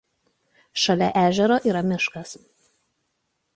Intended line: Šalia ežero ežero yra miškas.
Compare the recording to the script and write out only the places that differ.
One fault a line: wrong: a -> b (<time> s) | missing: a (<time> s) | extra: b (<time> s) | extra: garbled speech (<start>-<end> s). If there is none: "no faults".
missing: ežero (1.6 s)